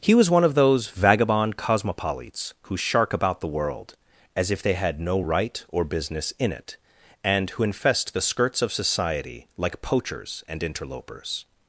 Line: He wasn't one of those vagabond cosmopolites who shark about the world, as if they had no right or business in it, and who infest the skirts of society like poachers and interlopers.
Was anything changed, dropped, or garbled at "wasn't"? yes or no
yes